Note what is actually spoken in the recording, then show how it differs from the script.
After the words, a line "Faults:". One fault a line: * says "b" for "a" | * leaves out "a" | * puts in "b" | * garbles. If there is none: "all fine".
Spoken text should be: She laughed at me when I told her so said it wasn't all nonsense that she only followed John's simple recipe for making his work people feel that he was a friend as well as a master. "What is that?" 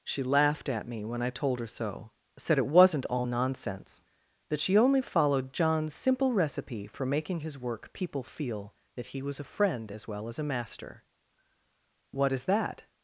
She laughed at me when I told her so said it wasn't all nonsense that she only followed John's simple recipe for making his work people feel that he was a friend as well as a master. "What is that?"
Faults:
all fine